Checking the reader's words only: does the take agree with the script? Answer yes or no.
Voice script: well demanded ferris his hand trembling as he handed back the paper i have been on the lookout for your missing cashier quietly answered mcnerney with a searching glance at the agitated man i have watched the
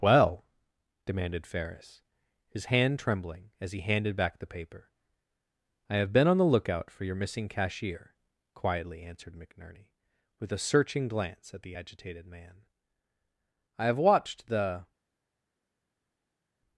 yes